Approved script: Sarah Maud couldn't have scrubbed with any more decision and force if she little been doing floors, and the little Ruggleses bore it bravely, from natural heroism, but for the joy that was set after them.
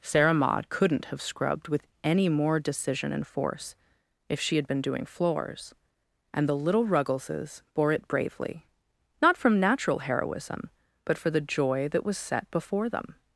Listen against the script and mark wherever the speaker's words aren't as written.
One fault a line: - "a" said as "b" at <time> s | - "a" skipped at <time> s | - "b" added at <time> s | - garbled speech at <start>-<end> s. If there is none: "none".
- "little" said as "had" at 4.5 s
- "not" added at 9.2 s
- "after" said as "before" at 12.5 s